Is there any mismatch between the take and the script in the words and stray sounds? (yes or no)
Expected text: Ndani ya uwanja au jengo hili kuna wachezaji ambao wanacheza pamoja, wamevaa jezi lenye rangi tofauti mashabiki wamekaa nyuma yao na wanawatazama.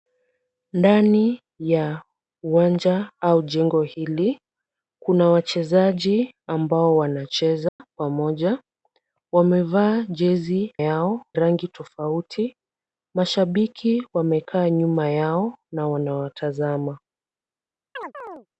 yes